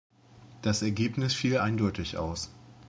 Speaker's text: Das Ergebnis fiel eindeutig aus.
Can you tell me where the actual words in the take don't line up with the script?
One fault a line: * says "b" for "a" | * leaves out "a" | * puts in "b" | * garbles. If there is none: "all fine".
all fine